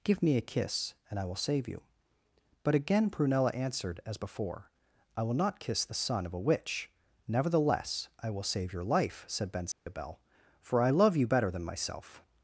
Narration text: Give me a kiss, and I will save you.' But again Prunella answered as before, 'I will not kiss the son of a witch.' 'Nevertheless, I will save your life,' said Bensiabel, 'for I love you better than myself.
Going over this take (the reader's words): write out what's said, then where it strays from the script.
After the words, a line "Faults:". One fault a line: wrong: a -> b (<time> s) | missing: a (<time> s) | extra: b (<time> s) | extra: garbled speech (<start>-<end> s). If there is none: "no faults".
Give me a kiss, and I will save you.' But again Prunella answered as before, 'I will not kiss the son of a witch.' 'Nevertheless, I will save your life,' said Bensiabel, 'for I love you better than myself.
Faults:
no faults